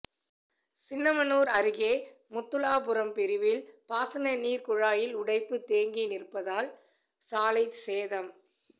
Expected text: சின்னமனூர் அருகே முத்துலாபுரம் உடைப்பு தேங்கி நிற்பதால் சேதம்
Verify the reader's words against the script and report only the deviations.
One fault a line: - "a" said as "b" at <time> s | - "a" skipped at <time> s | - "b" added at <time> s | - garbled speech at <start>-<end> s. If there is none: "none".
- "பிரிவில் பாசனநீர் குழாயில்" added at 3.1 s
- "சாலை" added at 7.3 s